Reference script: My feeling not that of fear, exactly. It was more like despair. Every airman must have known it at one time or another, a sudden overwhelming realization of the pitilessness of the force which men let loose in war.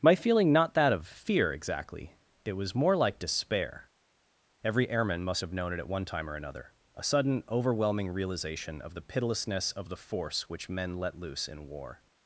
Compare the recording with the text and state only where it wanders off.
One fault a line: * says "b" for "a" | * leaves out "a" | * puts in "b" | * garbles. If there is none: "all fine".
all fine